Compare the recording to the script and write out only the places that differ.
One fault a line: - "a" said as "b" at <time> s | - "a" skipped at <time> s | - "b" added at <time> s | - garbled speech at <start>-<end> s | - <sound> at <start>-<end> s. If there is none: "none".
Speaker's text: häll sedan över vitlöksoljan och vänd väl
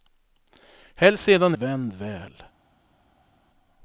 - "över vitlöksoljan och" skipped at 1.6 s